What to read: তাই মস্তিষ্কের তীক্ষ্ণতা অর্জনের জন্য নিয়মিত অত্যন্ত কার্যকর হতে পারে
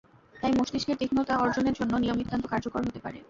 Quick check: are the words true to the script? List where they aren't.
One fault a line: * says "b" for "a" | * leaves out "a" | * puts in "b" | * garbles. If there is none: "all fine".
all fine